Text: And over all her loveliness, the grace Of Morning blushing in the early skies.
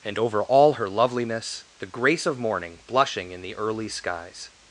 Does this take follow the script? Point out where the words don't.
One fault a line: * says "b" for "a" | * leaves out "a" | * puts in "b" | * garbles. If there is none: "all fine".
all fine